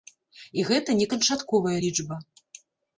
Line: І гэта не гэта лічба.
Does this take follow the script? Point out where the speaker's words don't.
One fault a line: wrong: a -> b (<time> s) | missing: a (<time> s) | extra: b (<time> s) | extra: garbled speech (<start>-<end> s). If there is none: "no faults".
wrong: гэта -> канчатковая (1.1 s)